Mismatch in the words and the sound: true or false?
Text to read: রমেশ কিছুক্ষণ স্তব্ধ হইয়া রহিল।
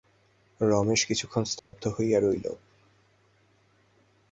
true